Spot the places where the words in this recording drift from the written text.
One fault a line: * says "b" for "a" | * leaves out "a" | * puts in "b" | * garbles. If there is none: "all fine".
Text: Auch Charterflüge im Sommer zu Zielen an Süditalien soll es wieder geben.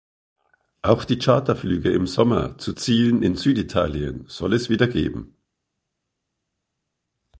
* puts in "die"
* says "in" for "an"